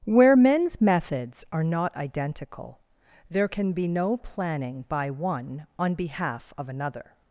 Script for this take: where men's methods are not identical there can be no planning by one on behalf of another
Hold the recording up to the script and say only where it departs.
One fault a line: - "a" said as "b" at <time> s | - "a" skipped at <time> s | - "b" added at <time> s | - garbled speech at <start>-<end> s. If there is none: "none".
none